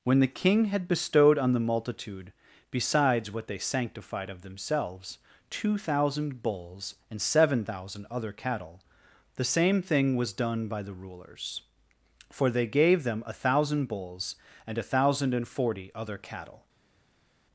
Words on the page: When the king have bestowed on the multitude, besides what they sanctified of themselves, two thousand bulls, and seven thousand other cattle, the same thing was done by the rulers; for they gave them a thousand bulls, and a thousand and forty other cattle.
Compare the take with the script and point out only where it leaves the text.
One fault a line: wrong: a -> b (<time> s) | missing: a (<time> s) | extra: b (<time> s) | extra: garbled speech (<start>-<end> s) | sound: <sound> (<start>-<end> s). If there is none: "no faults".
wrong: have -> had (0.7 s)